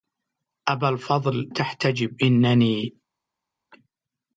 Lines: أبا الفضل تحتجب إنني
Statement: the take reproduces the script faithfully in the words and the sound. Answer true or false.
true